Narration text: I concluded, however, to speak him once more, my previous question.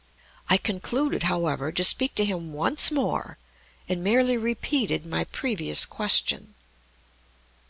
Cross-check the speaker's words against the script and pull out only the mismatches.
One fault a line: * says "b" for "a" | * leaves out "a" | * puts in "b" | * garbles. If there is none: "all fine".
* puts in "to"
* puts in "and merely repeated"